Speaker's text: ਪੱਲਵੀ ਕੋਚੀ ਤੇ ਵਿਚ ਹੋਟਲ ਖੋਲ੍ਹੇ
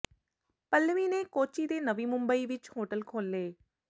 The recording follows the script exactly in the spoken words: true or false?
false